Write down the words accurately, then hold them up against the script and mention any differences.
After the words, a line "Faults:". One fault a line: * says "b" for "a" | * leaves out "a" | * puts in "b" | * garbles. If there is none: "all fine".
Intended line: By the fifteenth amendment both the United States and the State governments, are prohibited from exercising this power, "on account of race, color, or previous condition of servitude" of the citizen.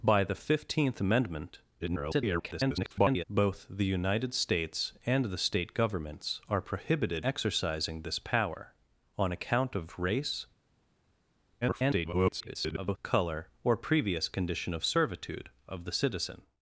By the fifteenth amendment [garbled] both the United States and the State governments, are prohibited exercising this power, "on account of race, [garbled] color, or previous condition of servitude" of the citizen.
Faults:
* garbles
* leaves out "from"
* garbles